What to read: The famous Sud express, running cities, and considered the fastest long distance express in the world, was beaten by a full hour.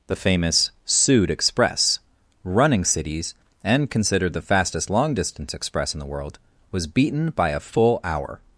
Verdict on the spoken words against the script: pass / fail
pass